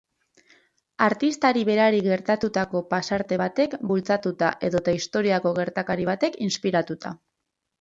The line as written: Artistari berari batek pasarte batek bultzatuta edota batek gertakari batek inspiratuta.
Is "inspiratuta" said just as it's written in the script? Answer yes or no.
yes